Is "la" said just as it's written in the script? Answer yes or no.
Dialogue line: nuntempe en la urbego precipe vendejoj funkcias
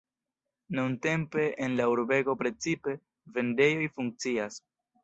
yes